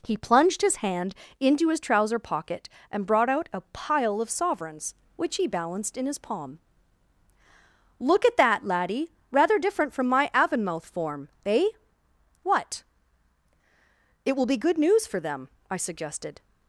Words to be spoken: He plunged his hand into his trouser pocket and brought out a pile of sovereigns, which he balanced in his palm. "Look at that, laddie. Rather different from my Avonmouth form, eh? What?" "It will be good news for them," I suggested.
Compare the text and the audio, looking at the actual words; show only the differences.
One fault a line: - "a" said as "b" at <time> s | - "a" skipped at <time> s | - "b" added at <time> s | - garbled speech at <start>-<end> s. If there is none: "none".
none